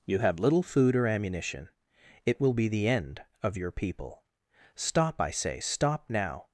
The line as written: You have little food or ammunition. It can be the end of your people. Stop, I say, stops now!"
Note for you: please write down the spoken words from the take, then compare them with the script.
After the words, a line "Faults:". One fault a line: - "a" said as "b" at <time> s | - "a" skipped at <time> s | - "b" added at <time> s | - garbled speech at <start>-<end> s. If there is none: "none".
You have little food or ammunition. It will be the end of your people. Stop, I say, stop now!"
Faults:
- "can" said as "will" at 2.4 s
- "stops" said as "stop" at 5.6 s